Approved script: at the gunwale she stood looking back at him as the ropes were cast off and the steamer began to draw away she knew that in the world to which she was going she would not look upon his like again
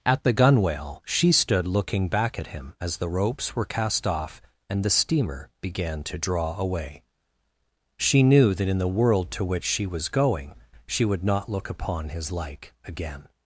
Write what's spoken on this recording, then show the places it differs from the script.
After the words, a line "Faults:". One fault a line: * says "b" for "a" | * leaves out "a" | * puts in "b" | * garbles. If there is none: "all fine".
at the gunwale she stood looking back at him as the ropes were cast off and the steamer began to draw away she knew that in the world to which she was going she would not look upon his like again
Faults:
all fine